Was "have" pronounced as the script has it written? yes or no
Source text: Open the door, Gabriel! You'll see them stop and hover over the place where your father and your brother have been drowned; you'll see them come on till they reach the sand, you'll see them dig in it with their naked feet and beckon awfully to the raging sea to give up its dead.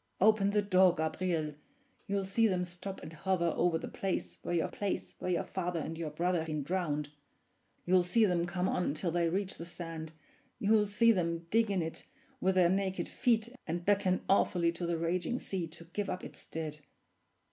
no